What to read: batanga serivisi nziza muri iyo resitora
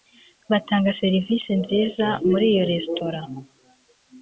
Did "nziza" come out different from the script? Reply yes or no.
no